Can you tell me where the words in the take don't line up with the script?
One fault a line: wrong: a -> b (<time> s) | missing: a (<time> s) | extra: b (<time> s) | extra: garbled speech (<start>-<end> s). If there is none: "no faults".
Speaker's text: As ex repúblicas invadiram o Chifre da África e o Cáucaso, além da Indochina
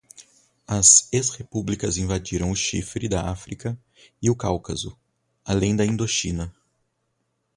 no faults